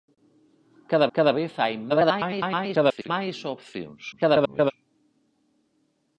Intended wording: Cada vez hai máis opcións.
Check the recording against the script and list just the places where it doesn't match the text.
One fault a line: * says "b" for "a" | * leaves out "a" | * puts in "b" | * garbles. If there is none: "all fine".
* puts in "cada"
* garbles
* garbles